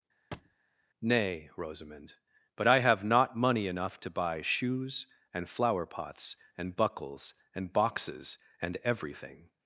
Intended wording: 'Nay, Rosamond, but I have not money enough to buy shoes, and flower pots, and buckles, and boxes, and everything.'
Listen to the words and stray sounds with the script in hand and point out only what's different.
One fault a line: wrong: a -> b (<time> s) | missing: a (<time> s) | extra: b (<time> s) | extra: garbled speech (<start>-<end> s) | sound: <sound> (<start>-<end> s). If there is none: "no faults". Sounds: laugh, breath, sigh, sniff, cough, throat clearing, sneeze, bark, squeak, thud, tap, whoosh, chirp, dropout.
sound: thud (0.3-0.6 s)